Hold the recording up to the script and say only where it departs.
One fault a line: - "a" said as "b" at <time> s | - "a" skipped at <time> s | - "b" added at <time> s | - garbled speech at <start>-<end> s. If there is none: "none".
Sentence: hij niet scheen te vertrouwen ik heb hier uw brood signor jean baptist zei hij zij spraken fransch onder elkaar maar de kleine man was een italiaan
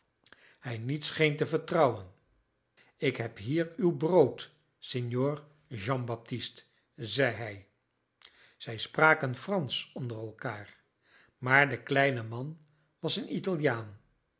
none